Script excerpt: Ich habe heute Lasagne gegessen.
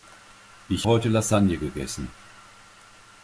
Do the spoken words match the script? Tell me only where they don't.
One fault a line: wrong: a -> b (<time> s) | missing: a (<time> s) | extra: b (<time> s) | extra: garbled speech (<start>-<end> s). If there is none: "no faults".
missing: habe (0.9 s)